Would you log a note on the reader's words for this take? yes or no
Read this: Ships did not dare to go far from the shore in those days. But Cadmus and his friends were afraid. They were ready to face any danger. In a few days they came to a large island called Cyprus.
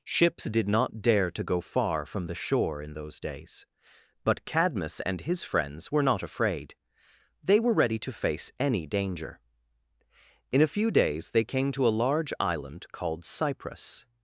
yes